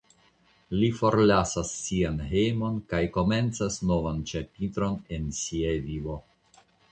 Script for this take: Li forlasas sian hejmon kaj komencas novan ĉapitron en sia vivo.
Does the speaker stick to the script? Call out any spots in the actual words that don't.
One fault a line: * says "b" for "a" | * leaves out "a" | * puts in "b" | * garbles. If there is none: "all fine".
all fine